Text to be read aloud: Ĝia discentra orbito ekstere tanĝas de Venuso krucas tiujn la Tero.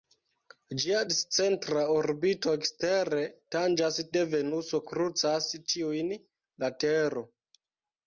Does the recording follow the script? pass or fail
pass